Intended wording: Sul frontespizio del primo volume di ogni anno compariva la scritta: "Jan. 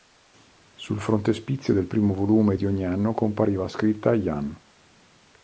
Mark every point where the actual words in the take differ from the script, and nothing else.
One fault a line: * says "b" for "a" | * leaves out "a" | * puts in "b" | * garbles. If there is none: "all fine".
all fine